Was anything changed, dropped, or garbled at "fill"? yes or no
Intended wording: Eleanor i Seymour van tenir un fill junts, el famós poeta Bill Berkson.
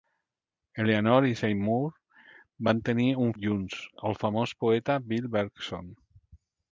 yes